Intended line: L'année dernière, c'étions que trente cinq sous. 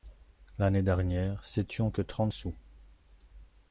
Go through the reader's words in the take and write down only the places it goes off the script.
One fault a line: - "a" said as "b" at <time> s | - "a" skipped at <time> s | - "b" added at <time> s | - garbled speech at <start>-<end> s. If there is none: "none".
- "cinq" skipped at 2.3 s